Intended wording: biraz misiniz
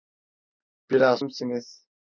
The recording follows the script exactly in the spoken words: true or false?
true